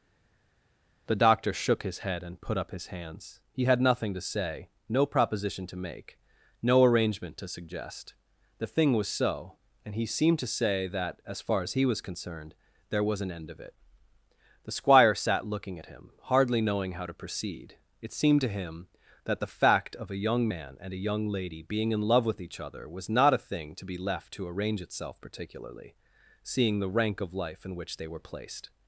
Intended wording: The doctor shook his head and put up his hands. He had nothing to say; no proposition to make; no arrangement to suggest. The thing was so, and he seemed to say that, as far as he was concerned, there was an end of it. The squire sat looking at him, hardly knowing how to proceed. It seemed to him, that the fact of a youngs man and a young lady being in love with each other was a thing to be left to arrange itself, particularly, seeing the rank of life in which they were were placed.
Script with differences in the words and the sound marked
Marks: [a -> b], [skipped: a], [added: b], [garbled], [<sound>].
The doctor shook his head and put up his hands. He had nothing to say; no proposition to make; no arrangement to suggest. The thing was so, and he seemed to say that, as far as he was concerned, there was an end of it. The squire sat looking at him, hardly knowing how to proceed. It seemed to him, that the fact of a [youngs -> young] man and a young lady being in love with each other was [added: not] a thing to be left to arrange itself, particularly, seeing the rank of life in which they were [skipped: were] placed.